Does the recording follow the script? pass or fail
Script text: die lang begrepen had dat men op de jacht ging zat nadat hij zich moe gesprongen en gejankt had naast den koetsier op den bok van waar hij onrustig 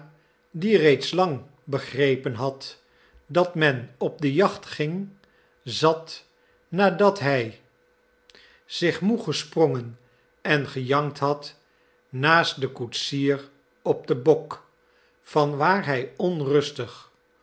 fail